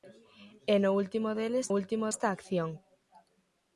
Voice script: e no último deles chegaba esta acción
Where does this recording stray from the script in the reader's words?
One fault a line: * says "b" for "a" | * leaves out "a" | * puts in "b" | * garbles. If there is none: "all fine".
* says "último" for "chegaba"